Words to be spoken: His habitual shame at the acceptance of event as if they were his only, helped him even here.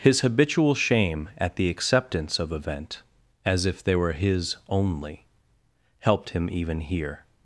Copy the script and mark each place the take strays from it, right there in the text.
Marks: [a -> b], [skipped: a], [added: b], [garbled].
His habitual shame at the acceptance of event as if they were his only, helped him even here.